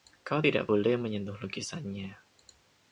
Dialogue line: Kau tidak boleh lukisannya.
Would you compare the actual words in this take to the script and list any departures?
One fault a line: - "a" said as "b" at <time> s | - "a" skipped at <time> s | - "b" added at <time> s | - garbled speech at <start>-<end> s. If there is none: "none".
- "menyentuh" added at 1.0 s